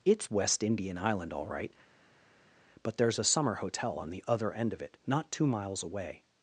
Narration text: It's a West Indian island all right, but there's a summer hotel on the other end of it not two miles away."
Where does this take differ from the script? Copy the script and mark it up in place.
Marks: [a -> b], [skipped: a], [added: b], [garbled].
It's [skipped: a] West Indian island all right, but there's a summer hotel on the other end of it not two miles away."